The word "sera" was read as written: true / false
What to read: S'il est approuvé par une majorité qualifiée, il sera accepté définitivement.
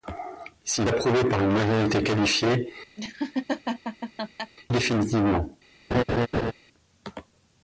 false